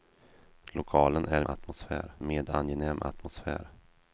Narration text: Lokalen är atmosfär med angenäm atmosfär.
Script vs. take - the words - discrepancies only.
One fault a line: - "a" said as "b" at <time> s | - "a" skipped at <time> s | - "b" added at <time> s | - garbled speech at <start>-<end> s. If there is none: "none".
none